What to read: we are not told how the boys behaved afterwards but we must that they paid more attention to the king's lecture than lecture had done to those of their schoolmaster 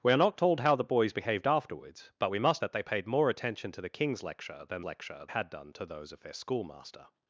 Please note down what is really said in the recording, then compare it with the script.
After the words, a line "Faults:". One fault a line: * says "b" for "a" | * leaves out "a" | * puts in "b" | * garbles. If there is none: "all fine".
we are not told how the boys behaved afterwards but we must that they paid more attention to the king's lecture than lecture had done to those of their schoolmaster
Faults:
all fine